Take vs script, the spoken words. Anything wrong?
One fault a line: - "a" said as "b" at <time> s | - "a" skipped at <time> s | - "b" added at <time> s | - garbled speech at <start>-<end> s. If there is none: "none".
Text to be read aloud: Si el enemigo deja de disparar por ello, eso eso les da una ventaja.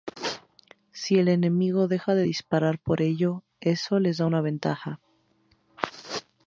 - "eso" skipped at 4.0 s